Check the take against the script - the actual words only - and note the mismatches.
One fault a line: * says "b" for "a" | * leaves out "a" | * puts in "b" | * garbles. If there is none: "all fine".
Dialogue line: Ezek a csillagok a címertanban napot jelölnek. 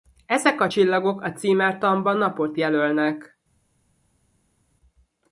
all fine